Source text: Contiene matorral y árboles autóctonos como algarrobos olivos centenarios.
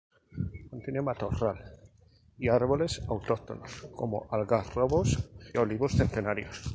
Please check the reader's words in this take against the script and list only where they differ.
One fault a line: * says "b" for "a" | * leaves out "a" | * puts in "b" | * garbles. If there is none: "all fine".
all fine